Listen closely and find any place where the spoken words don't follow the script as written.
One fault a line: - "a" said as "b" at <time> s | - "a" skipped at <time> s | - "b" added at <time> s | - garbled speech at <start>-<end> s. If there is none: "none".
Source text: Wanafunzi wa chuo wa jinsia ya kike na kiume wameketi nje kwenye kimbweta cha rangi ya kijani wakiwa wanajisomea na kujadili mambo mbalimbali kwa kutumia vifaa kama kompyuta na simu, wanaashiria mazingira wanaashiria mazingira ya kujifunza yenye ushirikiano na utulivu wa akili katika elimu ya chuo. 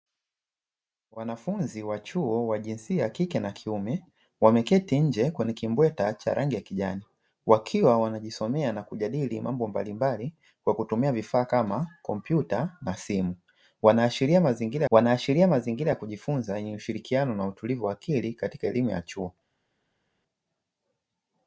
none